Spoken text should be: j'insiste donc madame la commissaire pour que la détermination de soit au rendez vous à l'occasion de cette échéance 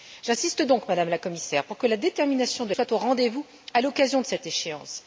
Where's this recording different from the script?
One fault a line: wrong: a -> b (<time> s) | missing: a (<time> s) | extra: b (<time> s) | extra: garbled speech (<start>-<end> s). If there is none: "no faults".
no faults